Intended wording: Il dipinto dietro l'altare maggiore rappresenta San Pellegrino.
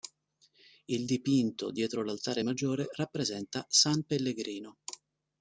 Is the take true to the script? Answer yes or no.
yes